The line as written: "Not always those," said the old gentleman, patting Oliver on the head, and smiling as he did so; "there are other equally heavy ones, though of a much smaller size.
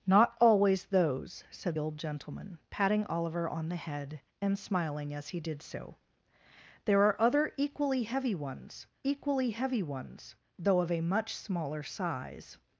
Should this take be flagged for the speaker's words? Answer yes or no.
yes